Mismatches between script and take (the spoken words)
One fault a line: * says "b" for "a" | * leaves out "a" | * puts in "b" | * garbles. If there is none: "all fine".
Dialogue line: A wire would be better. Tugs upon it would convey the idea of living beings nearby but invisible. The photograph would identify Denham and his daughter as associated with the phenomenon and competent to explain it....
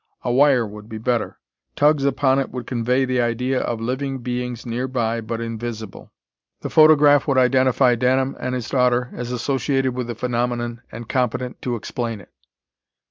all fine